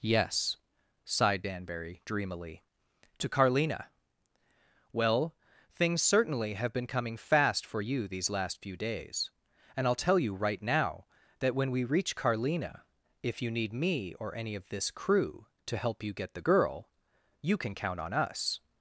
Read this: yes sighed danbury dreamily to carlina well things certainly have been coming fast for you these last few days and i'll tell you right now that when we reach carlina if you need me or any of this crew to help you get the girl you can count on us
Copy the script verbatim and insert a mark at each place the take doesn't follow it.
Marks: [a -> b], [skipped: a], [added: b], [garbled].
yes sighed danbury dreamily to carlina well things certainly have been coming fast for you these last few days and i'll tell you right now that when we reach carlina if you need me or any of this crew to help you get the girl you can count on us